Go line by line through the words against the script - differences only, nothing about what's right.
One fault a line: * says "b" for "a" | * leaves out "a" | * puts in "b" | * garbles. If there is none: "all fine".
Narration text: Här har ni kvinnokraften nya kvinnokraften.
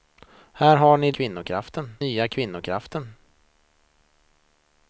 all fine